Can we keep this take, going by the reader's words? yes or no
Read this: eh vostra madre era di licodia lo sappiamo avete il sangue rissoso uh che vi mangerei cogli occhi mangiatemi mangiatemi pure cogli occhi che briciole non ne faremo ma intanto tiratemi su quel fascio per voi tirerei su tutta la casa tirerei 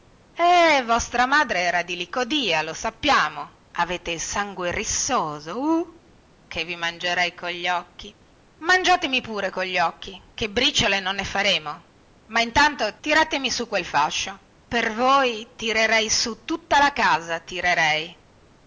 no